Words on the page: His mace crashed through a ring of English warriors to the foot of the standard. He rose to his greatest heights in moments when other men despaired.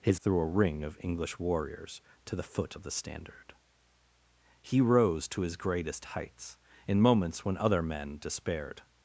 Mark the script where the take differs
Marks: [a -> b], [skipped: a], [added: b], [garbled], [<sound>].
His [skipped: mace crashed] through a ring of English warriors to the foot of the standard. He rose to his greatest heights in moments when other men despaired.